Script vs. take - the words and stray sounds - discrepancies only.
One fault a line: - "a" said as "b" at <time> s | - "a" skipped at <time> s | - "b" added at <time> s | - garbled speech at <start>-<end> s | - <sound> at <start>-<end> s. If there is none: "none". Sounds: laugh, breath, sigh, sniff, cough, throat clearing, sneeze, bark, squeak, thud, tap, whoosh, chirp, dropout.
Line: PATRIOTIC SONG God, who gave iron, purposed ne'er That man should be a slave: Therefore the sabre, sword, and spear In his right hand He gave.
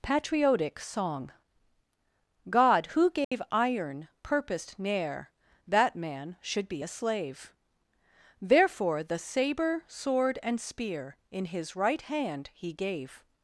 - dropout at 3.2-3.3 s